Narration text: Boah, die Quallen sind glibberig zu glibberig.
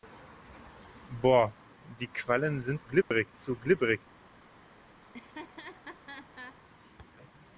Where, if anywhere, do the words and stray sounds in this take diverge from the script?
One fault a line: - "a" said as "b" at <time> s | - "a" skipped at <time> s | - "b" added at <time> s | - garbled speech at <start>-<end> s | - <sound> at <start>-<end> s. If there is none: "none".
- dropout at 3.0-3.1 s
- laugh at 5.0-6.6 s